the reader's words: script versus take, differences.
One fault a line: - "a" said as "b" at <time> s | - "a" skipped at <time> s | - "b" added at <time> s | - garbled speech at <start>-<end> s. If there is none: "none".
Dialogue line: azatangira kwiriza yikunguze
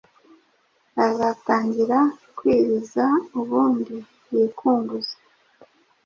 - "ubundi" added at 3.4 s